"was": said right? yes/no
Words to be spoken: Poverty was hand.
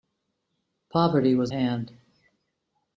yes